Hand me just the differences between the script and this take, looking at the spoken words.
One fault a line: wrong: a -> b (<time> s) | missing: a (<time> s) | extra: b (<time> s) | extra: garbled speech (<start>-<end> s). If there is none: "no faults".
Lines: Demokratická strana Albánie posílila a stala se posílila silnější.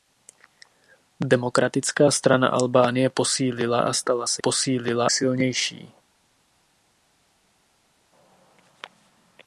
no faults